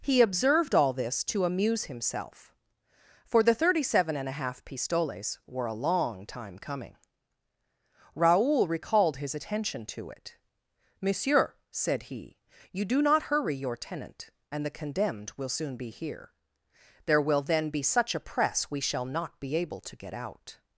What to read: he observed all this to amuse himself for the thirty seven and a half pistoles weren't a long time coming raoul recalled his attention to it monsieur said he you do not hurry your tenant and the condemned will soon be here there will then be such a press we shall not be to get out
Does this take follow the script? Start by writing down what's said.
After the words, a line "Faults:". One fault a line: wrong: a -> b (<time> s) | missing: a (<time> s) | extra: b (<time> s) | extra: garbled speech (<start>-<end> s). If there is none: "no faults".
he observed all this to amuse himself for the thirty seven and a half pistoles were a long time coming raoul recalled his attention to it monsieur said he you do not hurry your tenant and the condemned will soon be here there will then be such a press we shall not be able to get out
Faults:
wrong: weren't -> were (5.5 s)
extra: able (19.6 s)